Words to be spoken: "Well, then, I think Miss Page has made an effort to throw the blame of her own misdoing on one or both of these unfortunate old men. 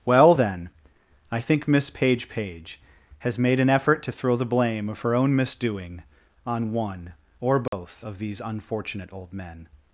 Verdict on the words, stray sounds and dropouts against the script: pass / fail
fail